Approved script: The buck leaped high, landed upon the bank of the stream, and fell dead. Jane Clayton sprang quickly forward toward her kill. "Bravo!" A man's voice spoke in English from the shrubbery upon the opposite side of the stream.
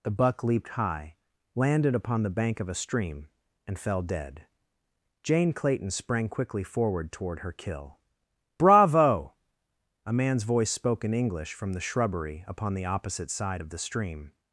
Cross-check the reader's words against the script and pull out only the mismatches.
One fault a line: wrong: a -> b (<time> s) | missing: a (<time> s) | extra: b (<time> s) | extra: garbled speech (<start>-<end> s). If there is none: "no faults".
wrong: the -> a (2.7 s)